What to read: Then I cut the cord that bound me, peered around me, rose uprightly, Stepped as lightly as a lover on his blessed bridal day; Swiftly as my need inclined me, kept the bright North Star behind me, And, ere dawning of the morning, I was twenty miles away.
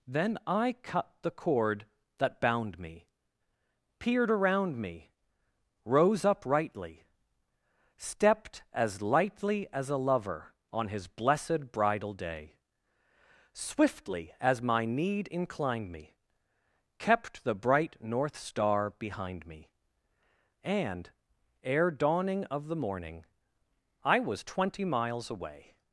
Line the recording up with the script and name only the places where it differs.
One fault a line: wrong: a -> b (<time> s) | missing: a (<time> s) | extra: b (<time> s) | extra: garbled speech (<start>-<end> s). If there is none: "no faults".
no faults